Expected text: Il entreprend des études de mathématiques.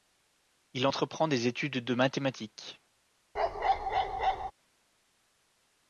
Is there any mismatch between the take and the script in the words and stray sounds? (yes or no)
yes